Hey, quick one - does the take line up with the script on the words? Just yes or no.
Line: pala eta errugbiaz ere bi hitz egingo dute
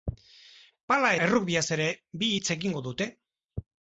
no